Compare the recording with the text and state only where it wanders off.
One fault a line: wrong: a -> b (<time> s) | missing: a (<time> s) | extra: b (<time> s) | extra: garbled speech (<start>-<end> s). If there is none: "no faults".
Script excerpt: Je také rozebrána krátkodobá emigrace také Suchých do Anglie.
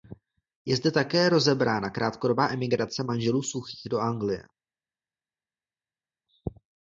extra: zde (0.8 s)
wrong: také -> manželů (3.0 s)